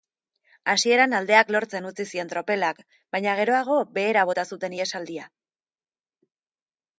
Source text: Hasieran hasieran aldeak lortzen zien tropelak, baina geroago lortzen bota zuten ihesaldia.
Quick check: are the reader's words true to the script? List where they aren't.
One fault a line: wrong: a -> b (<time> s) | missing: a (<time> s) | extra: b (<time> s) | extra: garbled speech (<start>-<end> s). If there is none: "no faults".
missing: hasieran (1.1 s)
extra: utzi (1.9 s)
wrong: lortzen -> behera (4.0 s)